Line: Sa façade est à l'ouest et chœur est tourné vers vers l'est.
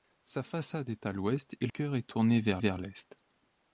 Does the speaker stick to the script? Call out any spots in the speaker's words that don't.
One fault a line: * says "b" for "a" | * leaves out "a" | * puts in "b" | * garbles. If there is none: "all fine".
all fine